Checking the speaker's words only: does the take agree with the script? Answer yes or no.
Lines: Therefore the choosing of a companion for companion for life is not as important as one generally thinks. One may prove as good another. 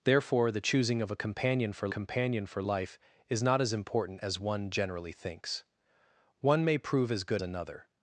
yes